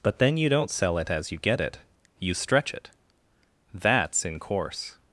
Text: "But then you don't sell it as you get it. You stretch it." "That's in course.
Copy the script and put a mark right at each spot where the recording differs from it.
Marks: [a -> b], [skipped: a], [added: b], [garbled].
"But then you don't sell it as you get it. You stretch it." "That's in course.